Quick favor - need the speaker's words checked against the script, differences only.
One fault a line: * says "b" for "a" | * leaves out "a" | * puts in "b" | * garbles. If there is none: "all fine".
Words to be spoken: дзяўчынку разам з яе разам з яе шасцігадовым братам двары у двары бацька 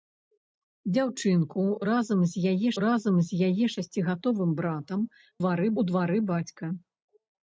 all fine